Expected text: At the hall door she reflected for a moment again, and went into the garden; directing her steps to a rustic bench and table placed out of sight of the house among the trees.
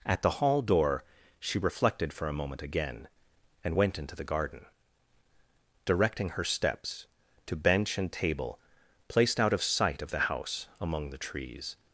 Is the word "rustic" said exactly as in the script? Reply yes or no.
no